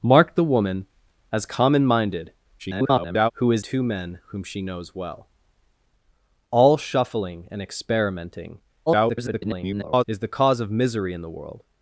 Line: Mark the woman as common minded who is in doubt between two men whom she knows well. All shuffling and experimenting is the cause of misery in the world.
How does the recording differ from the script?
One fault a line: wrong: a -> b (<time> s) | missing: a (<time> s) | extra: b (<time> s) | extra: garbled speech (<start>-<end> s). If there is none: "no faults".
extra: garbled speech (2.6-3.3 s)
missing: in doubt between (3.6 s)
extra: garbled speech (8.9-10.0 s)